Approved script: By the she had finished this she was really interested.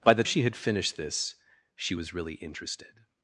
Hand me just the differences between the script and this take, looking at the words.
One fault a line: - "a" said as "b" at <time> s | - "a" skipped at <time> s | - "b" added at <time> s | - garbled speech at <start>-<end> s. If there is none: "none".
none